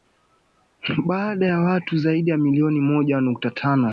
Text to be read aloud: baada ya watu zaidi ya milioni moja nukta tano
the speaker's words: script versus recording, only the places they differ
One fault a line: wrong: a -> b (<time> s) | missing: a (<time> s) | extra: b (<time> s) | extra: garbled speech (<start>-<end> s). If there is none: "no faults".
no faults